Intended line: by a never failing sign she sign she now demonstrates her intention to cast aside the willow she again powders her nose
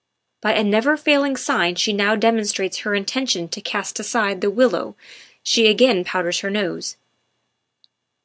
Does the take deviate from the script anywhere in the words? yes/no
yes